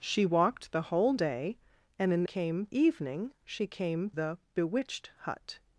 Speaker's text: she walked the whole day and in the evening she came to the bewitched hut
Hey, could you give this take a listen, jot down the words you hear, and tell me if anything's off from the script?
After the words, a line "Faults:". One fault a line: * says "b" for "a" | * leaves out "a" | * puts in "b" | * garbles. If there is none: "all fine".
she walked the whole day and in came evening she came the bewitched hut
Faults:
* says "came" for "the"
* leaves out "to"